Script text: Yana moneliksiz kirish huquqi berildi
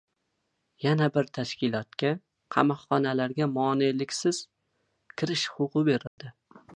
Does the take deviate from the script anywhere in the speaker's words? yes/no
yes